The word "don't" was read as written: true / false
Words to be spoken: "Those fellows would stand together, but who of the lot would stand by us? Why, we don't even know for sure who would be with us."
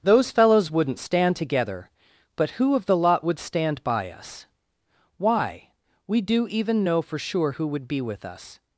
false